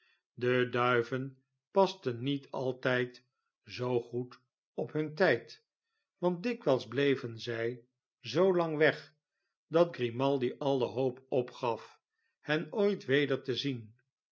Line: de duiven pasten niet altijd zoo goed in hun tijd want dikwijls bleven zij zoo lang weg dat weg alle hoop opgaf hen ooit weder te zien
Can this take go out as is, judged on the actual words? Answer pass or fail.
fail